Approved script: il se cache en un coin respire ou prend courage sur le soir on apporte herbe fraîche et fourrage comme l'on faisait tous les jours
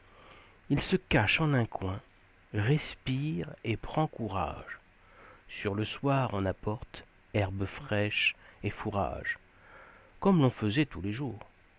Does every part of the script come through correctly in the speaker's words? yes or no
no